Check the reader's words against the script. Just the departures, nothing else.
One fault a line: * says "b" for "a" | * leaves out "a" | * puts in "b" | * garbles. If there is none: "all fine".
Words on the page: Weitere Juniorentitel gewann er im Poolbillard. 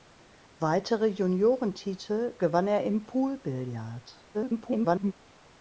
* garbles